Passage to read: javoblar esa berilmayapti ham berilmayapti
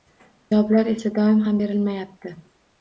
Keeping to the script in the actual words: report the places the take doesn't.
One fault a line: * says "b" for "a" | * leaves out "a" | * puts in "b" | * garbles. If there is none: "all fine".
* says "doim" for "berilmayapti"